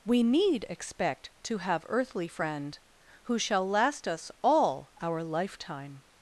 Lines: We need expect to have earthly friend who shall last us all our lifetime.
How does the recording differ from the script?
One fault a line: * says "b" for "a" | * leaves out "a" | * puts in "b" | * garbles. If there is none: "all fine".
all fine